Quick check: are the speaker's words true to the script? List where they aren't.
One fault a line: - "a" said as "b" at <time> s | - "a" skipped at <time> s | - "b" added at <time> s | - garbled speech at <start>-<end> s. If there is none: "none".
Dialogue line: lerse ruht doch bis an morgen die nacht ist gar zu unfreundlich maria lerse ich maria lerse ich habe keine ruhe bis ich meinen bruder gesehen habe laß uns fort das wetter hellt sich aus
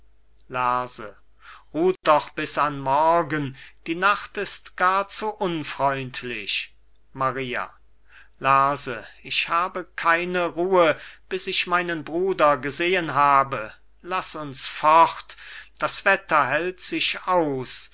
- "maria lerse ich" skipped at 9.5 s